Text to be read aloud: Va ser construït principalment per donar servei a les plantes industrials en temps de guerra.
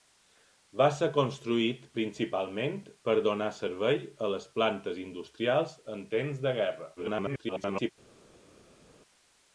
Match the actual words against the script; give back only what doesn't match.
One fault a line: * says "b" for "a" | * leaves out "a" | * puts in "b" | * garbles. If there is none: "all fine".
* garbles